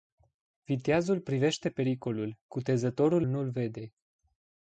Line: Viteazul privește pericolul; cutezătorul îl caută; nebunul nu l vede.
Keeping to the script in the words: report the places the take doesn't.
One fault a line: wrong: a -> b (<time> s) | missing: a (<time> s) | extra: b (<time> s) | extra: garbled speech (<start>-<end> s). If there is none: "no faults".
missing: îl caută nebunul (3.2 s)